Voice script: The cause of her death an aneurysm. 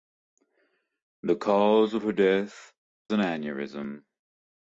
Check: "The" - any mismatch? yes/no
no